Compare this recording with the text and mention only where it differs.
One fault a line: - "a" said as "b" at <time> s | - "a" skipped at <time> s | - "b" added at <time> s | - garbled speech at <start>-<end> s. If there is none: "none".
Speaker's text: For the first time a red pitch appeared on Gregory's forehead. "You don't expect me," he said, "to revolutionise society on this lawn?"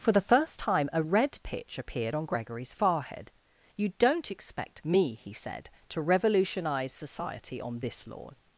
none